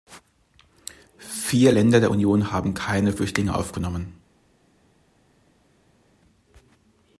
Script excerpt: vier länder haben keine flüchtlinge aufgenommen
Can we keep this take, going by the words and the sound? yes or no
no